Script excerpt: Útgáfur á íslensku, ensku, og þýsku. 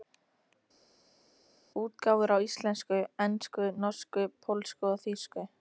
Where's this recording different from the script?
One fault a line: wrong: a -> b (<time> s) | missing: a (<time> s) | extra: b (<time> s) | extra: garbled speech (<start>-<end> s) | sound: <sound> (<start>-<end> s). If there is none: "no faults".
extra: norsku pólsku (3.9 s)